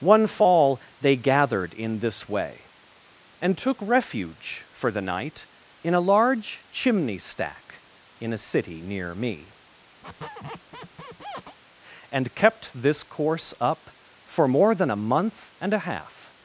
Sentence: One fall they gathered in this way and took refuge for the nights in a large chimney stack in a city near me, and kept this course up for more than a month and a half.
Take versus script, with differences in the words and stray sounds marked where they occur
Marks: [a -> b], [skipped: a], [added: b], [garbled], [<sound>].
One fall they gathered in this way and took refuge for the [nights -> night] in a large chimney stack in a city near me, [squeak] and kept this course up for more than a month and a half.